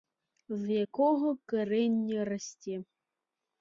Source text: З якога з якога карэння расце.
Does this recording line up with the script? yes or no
no